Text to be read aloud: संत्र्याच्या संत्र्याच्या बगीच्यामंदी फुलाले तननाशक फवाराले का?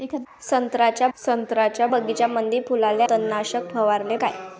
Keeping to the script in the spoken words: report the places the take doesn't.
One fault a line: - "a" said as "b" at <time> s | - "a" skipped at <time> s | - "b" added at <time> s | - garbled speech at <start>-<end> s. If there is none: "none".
none